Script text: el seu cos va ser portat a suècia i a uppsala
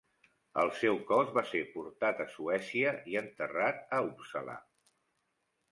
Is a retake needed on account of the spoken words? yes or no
yes